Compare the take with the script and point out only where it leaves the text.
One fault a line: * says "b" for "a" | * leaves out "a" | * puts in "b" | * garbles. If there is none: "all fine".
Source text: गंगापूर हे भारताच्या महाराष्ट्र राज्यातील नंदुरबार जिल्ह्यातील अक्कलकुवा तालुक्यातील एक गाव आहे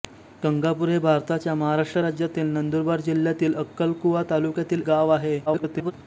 * leaves out "एक"
* garbles